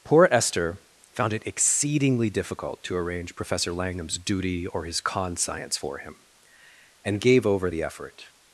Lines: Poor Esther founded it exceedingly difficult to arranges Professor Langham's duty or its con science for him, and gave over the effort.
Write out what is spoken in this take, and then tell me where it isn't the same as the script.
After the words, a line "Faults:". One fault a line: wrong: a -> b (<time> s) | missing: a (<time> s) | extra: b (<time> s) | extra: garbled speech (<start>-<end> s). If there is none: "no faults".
Poor Esther found it exceedingly difficult to arrange Professor Langham's duty or his con science for him, and gave over the effort.
Faults:
wrong: founded -> found (1.1 s)
wrong: arranges -> arrange (2.9 s)
wrong: its -> his (4.8 s)